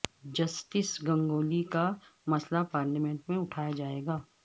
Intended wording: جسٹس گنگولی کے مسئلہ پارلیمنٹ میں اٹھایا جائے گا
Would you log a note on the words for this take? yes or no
yes